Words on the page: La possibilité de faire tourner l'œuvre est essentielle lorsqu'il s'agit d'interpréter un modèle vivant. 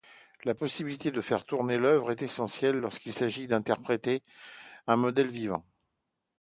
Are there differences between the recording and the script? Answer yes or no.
no